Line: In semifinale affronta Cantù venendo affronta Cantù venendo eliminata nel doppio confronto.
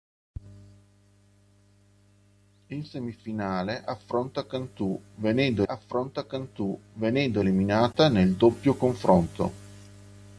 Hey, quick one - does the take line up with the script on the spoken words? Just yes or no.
yes